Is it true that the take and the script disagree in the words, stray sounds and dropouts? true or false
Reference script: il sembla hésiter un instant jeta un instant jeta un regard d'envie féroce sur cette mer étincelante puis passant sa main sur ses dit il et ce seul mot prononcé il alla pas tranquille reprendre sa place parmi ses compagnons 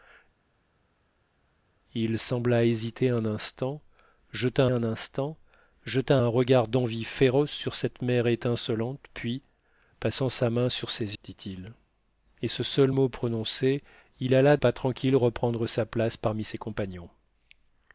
false